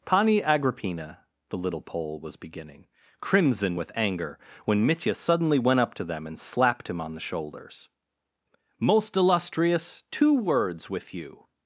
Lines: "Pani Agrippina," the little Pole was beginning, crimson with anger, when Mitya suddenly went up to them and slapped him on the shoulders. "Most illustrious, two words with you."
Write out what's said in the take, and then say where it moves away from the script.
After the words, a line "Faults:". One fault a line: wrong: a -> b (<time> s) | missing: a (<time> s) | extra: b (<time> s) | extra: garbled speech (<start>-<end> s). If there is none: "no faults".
"Pani Agrippina," the little Pole was beginning, crimson with anger, when Mitya suddenly went up to them and slapped him on the shoulders. "Most illustrious, two words with you."
Faults:
no faults